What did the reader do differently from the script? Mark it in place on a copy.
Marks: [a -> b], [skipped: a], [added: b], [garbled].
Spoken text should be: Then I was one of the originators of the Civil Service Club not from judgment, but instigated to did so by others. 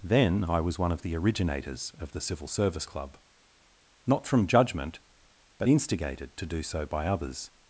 Then I was one of the originators of the Civil Service Club not from judgment, but instigated to [did -> do] so by others.